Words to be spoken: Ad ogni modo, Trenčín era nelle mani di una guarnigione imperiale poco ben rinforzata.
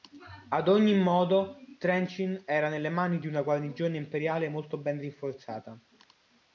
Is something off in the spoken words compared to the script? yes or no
yes